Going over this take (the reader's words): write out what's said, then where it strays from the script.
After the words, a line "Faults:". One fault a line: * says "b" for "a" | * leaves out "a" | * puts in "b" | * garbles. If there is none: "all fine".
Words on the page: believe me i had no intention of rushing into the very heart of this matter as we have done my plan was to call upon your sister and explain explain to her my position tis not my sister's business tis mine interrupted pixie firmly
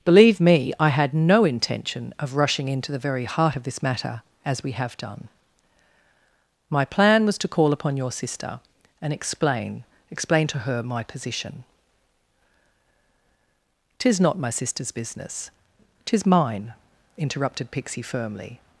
believe me i had no intention of rushing into the very heart of this matter as we have done my plan was to call upon your sister and explain explain to her my position tis not my sister's business tis mine interrupted pixie firmly
Faults:
all fine